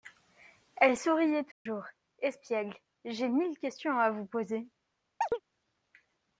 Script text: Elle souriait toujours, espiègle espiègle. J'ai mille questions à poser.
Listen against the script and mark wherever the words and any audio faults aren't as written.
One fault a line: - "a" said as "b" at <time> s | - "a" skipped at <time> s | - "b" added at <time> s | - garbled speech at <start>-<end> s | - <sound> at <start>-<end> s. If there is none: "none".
- dropout at 1.5-1.7 s
- "espiègle" skipped at 2.7 s
- "vous" added at 4.1 s
- chirp at 5.2-5.4 s